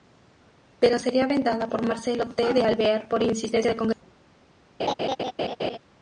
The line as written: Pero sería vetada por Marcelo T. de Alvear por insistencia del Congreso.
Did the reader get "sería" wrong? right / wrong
right